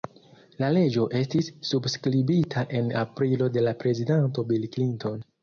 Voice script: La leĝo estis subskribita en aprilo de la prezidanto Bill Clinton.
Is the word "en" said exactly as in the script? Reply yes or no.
yes